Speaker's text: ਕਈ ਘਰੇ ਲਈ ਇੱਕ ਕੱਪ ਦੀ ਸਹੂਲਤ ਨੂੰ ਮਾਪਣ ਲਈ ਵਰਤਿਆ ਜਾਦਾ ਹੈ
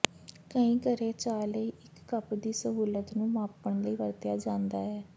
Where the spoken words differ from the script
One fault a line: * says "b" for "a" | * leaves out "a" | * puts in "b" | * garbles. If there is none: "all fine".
* puts in "ਚਾਹ"